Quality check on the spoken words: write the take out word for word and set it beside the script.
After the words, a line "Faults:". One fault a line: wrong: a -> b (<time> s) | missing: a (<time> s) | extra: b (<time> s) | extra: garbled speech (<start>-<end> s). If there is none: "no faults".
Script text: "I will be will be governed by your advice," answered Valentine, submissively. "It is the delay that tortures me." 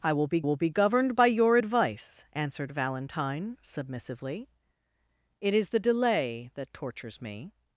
"I will be will be governed by your advice," answered Valentine, submissively. "It is the delay that tortures me."
Faults:
no faults